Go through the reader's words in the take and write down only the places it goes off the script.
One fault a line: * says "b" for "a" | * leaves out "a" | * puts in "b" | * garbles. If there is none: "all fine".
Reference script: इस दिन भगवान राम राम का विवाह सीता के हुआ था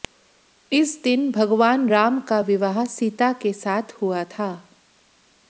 * leaves out "राम"
* puts in "साथ"